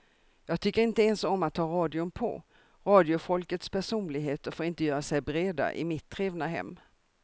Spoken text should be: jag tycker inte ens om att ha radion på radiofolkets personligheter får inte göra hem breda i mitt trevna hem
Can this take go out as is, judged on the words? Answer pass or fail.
fail